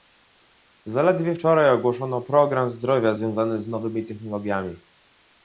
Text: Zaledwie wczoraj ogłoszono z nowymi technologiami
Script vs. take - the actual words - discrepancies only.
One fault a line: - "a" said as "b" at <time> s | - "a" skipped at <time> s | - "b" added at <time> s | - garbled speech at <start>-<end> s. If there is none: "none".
- "program zdrowia związany" added at 2.2 s